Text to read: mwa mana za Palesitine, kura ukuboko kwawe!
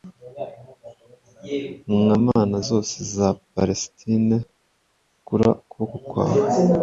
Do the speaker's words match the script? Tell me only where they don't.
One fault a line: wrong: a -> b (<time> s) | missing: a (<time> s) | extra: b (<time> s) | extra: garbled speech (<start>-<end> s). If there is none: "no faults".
extra: zose (2.7 s)